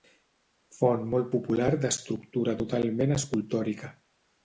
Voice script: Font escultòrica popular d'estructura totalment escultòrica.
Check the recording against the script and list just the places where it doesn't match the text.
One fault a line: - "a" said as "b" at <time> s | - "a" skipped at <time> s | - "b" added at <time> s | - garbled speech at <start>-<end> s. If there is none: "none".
- "escultòrica" said as "molt" at 1.1 s